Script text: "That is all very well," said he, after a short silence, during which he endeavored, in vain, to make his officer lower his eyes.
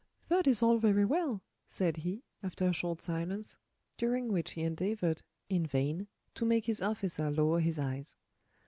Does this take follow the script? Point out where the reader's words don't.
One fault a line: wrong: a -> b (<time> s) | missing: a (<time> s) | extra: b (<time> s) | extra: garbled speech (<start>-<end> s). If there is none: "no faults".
no faults